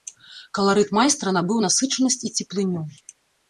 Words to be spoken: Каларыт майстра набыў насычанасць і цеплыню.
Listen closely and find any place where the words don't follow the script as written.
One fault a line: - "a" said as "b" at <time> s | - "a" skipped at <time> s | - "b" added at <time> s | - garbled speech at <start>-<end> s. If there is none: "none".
none